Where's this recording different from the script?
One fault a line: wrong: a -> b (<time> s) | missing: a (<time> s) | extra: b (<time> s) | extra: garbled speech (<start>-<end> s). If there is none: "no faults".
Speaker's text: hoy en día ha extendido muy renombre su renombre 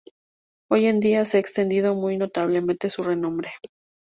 extra: se (1.2 s)
wrong: renombre -> notablemente (2.2 s)